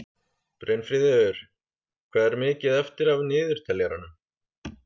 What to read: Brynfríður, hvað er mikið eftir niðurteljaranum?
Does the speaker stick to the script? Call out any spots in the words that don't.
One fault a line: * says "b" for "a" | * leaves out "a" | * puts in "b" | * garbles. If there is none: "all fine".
* puts in "af"